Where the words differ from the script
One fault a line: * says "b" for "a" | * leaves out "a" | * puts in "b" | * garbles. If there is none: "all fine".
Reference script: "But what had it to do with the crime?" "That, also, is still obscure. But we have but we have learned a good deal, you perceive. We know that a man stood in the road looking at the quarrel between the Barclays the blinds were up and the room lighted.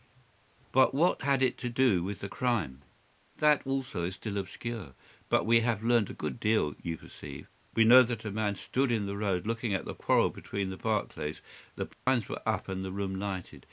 * leaves out "but we have"